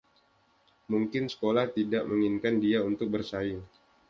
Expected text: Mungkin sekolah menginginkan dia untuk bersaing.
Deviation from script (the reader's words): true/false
true